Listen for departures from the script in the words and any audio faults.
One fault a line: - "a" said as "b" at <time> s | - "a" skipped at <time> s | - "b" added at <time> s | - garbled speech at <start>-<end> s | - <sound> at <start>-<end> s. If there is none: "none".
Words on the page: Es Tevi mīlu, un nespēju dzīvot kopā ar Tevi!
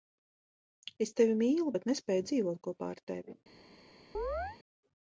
- "un" said as "bet" at 1.7 s
- chirp at 4.1-4.6 s